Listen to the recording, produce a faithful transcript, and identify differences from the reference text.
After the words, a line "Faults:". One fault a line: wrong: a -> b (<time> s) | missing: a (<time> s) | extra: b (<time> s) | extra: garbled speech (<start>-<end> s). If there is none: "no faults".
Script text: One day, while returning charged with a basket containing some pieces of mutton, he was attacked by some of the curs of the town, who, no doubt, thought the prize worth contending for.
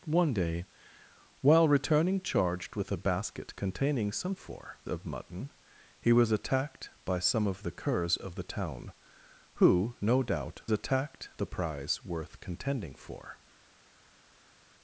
One day, while returning charged with a basket containing some for of mutton, he was attacked by some of the curs of the town, who, no doubt, attacked the prize worth contending for.
Faults:
wrong: pieces -> for (4.3 s)
wrong: thought -> attacked (10.7 s)